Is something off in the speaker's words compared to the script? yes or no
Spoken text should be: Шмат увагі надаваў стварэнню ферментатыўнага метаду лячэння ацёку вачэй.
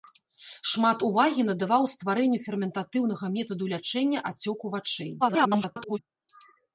yes